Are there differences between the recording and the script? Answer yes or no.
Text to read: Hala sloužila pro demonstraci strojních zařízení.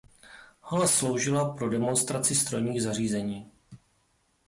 no